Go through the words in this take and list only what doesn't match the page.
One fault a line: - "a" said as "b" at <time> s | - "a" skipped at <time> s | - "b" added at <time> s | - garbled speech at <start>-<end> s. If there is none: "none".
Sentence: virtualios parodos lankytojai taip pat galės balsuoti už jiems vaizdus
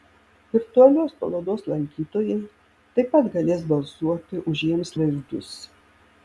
none